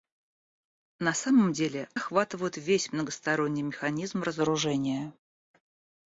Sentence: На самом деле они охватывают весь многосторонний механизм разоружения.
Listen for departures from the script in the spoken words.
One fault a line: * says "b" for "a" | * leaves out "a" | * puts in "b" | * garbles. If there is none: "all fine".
* leaves out "они"